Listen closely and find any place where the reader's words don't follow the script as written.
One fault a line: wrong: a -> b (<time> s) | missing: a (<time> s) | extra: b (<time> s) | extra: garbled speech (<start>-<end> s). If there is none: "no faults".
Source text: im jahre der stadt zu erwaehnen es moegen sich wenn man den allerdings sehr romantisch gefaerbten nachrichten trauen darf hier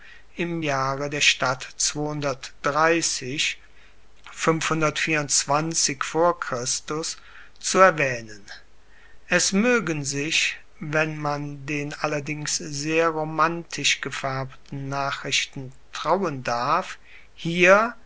no faults